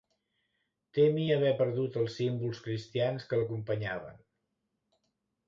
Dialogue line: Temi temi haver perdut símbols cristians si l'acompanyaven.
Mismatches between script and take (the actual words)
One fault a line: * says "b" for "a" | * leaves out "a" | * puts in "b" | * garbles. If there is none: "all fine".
* leaves out "temi"
* puts in "els"
* says "que" for "si"